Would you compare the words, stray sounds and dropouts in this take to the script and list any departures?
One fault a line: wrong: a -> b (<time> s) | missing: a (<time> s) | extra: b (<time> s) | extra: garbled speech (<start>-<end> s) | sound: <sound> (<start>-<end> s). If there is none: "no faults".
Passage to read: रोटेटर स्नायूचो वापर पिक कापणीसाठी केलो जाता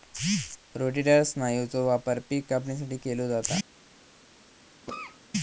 sound: cough (4.9-5.2 s)